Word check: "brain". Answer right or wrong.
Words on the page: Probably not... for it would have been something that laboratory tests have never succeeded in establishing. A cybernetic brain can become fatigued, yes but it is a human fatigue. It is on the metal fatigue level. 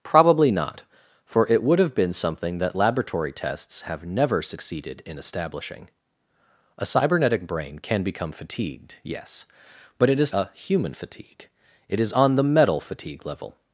right